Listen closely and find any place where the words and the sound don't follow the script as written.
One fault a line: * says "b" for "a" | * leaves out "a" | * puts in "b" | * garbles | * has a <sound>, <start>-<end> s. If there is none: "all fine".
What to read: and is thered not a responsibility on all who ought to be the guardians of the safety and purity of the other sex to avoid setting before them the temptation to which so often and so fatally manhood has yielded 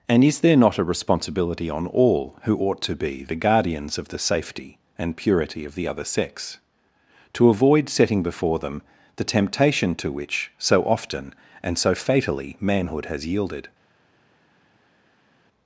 * says "there" for "thered"